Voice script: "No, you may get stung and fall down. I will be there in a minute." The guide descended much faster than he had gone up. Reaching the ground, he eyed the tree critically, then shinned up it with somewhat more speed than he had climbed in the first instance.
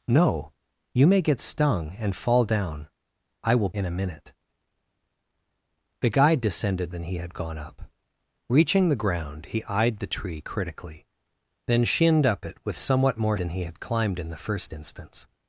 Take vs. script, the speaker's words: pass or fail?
fail